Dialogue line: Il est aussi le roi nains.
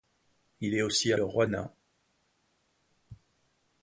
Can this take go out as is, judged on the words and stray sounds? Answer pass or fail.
pass